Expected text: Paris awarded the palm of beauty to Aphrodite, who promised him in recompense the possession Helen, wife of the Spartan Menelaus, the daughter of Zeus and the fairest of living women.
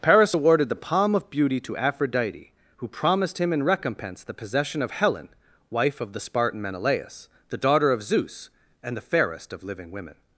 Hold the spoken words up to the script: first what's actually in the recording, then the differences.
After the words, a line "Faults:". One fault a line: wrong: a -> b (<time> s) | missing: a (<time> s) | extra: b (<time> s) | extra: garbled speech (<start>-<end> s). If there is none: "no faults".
Paris awarded the palm of beauty to Aphrodite, who promised him in recompense the possession of Helen, wife of the Spartan Menelaus, the daughter of Zeus and the fairest of living women.
Faults:
extra: of (4.8 s)